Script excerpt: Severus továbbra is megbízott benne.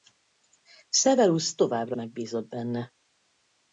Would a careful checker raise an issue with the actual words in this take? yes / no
yes